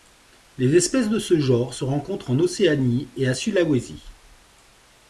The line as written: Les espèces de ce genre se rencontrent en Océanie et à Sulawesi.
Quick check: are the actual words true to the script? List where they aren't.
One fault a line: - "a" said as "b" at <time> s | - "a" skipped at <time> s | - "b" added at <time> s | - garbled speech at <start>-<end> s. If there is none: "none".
none